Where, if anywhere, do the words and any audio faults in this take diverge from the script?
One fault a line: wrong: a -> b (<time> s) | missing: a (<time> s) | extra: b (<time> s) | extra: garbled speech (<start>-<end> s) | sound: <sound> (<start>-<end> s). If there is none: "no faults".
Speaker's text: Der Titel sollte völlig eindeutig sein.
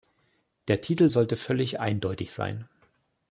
no faults